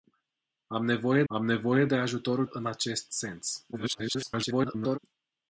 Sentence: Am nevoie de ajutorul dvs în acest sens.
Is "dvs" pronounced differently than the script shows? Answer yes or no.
yes